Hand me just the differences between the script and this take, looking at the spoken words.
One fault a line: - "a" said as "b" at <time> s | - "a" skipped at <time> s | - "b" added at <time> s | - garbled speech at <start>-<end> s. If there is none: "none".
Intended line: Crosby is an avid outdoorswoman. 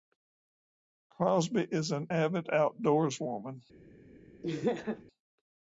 none